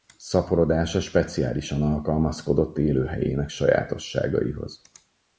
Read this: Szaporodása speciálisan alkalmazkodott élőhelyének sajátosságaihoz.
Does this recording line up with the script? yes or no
yes